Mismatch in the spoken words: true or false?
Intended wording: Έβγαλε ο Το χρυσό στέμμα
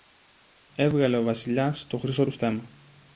true